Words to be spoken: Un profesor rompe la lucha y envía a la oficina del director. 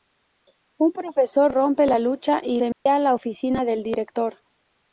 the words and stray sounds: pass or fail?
fail